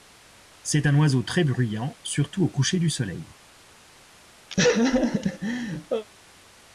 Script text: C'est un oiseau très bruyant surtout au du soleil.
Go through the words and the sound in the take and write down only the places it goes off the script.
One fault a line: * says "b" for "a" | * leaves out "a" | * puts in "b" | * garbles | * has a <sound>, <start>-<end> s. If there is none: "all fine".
* puts in "coucher"
* has a laugh, 4.5-6.1 s